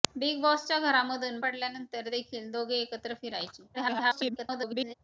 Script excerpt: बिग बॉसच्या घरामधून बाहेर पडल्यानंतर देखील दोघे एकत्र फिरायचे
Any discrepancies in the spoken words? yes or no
yes